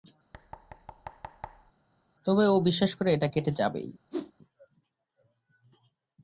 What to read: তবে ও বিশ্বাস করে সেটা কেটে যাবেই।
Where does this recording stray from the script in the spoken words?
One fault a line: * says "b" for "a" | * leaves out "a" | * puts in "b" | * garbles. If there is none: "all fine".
* says "এটা" for "সেটা"